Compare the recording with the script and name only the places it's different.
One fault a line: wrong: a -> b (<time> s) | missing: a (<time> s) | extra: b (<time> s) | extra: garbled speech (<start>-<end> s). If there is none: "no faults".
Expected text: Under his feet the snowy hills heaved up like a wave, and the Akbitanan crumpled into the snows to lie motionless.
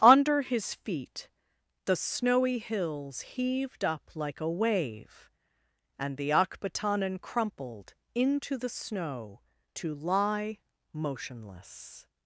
wrong: snows -> snow (8.7 s)